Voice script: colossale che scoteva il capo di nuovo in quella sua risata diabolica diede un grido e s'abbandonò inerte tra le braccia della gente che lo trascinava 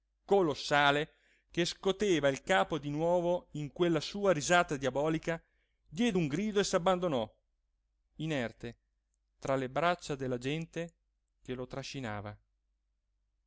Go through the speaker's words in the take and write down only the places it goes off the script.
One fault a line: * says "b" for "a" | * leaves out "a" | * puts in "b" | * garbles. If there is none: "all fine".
all fine